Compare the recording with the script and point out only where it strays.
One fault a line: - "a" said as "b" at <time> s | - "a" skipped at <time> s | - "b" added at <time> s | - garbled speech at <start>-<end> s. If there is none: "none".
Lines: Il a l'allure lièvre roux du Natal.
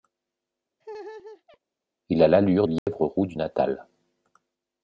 none